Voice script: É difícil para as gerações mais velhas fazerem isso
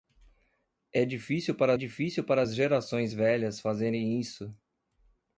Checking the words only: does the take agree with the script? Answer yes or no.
no